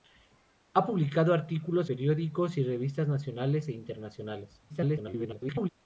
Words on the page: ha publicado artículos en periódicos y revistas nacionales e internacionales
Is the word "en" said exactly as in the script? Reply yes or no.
no